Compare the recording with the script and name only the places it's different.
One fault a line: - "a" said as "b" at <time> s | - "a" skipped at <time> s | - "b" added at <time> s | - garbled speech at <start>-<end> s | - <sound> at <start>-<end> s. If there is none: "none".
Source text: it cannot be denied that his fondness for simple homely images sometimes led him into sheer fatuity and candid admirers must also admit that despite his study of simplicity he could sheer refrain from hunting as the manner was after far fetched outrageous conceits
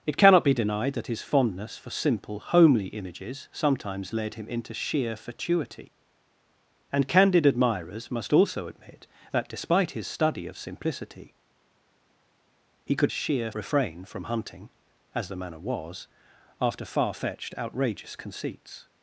none